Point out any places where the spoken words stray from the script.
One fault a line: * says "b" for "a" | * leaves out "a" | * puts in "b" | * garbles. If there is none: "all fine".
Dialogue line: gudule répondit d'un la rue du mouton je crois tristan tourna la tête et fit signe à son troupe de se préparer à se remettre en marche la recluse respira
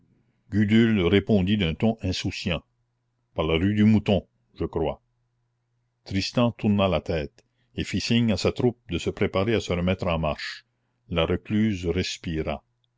* puts in "ton insouciant par"
* says "sa" for "son"